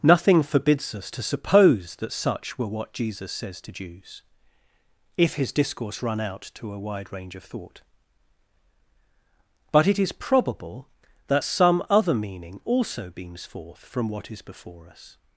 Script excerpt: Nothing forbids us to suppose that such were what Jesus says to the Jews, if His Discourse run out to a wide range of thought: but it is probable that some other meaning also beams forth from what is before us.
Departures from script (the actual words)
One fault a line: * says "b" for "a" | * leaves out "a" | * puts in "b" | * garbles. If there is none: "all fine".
* leaves out "the"